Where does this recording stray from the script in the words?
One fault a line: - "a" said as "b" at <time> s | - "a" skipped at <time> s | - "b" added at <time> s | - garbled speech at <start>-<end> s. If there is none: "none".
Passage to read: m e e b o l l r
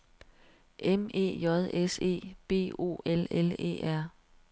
- "j s" added at 1.4 s
- "e" added at 3.6 s